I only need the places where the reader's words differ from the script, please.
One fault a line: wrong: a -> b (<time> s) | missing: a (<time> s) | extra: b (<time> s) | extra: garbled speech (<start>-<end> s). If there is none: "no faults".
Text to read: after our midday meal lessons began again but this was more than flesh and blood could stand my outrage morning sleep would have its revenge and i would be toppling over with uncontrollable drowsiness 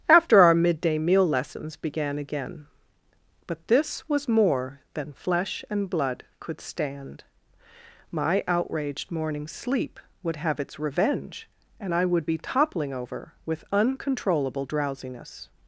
wrong: outrage -> outraged (8.5 s)